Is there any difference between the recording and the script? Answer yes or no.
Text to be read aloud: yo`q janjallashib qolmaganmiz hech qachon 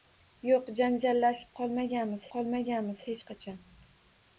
yes